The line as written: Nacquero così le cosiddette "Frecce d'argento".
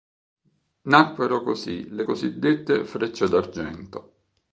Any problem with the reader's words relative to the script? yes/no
no